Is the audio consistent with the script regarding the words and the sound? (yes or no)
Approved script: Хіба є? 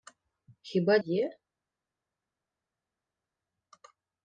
yes